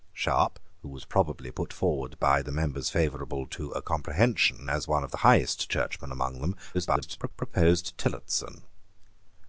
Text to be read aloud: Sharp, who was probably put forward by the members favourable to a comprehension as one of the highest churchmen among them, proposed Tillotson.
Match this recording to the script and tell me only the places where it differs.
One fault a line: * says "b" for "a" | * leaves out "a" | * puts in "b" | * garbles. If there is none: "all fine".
* garbles